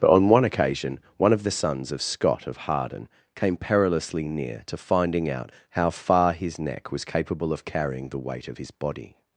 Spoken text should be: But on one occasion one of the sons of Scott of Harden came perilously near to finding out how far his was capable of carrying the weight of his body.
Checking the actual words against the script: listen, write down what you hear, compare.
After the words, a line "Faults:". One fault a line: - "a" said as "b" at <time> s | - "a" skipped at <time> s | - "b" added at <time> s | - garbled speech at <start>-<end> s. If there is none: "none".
But on one occasion one of the sons of Scott of Harden came perilously near to finding out how far his neck was capable of carrying the weight of his body.
Faults:
- "neck" added at 6.6 s